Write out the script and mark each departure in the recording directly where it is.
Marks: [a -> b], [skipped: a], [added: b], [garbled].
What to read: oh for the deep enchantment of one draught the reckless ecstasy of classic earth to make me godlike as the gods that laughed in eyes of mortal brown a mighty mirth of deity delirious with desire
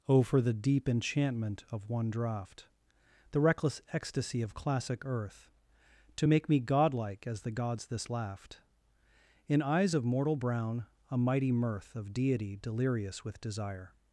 oh for the deep enchantment of one draught the reckless ecstasy of classic earth to make me godlike as the gods [that -> this] laughed in eyes of mortal brown a mighty mirth of deity delirious with desire